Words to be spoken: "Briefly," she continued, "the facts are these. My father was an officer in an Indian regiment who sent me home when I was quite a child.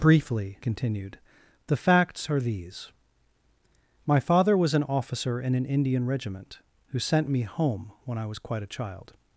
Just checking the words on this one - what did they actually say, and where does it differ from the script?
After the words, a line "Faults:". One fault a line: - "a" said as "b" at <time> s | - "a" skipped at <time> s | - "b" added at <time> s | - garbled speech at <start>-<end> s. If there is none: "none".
"Briefly," continued, "the facts are these. My father was an officer in an Indian regiment who sent me home when I was quite a child.
Faults:
- "she" skipped at 0.6 s